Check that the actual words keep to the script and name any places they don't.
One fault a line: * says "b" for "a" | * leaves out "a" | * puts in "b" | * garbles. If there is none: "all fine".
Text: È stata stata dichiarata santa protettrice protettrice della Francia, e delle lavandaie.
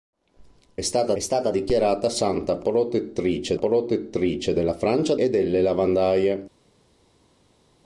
all fine